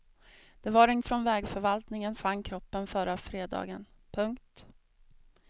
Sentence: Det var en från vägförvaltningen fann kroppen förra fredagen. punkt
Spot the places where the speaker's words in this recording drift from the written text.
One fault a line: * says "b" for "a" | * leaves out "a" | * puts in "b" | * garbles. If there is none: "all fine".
all fine